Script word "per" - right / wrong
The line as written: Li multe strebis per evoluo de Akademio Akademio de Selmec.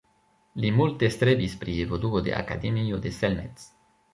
wrong